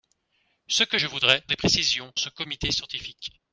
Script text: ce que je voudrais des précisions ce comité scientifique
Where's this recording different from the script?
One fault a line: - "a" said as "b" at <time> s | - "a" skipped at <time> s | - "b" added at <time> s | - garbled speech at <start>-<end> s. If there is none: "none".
none